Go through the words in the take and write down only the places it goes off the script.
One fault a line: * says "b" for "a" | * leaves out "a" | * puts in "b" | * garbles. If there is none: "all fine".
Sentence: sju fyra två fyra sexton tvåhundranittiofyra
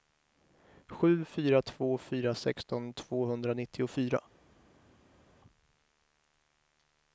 all fine